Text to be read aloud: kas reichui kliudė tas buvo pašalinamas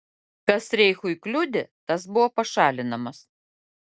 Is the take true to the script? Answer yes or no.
yes